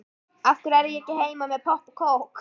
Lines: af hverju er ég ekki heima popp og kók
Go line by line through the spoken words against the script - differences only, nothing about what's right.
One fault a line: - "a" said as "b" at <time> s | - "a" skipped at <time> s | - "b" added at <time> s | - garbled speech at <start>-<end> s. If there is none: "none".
- "með" added at 1.5 s